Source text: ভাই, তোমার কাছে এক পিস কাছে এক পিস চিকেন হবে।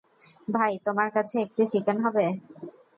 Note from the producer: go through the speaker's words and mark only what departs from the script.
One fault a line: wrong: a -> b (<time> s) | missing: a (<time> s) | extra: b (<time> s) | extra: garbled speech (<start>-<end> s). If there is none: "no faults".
missing: কাছে এক পিস (1.7 s)